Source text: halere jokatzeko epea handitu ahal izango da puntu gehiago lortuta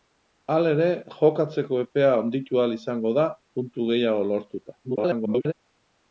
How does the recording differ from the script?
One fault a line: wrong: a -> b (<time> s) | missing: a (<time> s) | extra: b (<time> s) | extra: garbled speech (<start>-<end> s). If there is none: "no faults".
extra: garbled speech (4.8-5.5 s)